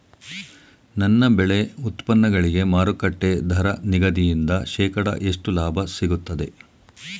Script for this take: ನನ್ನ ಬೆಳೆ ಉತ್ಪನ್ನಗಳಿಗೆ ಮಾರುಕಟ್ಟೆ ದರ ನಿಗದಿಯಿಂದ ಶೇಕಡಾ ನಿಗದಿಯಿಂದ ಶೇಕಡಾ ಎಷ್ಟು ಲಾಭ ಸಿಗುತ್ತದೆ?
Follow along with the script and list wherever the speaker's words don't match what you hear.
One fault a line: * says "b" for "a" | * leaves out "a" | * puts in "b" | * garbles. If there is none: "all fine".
* leaves out "ನಿಗದಿಯಿಂದ ಶೇಕಡಾ"